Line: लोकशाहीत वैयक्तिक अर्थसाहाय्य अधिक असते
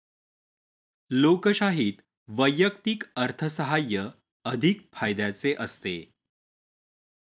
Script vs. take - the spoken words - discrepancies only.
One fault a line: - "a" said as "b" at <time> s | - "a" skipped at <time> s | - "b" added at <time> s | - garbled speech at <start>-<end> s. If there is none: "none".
- "फायद्याचे" added at 4.9 s